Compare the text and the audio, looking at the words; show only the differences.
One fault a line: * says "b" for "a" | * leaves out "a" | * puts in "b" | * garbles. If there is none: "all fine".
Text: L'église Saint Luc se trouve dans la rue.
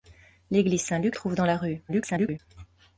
* leaves out "se"
* garbles